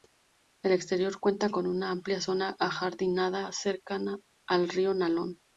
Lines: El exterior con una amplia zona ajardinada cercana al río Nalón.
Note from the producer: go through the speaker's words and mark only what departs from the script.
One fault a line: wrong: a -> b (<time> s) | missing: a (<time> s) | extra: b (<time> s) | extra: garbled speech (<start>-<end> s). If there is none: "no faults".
extra: cuenta (1.2 s)